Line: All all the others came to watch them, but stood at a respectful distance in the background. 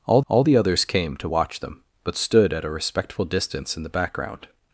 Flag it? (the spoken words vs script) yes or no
no